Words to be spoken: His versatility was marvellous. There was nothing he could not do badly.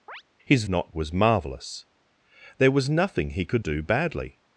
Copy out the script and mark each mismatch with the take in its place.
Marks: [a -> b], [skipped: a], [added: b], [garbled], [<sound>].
[chirp] His [versatility -> not] was marvellous. There was nothing he could [skipped: not] do badly.